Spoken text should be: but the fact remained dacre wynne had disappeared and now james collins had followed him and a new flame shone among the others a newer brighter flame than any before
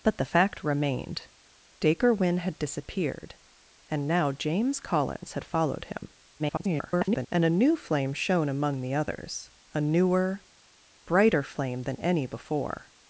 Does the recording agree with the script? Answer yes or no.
no